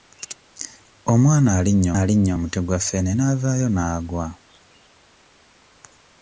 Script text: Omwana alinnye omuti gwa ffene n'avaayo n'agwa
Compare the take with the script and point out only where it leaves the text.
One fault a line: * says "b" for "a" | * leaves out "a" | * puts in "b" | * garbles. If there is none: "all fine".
* puts in "alinnye"